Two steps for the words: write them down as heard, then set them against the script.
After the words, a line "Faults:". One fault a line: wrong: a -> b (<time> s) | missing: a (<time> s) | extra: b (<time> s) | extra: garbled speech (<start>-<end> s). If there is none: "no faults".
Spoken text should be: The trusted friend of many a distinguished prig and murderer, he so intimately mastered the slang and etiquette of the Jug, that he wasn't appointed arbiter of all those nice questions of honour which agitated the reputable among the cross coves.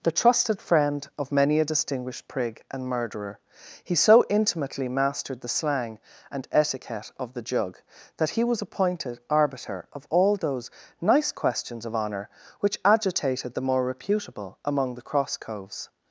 The trusted friend of many a distinguished prig and murderer, he so intimately mastered the slang and etiquette of the Jug, that he was appointed arbiter of all those nice questions of honour which agitated the more reputable among the cross coves.
Faults:
wrong: wasn't -> was (8.4 s)
extra: more (13.6 s)